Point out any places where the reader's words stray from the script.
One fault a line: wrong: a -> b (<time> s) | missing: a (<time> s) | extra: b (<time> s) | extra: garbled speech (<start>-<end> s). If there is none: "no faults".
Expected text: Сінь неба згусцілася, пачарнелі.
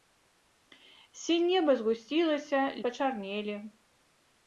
no faults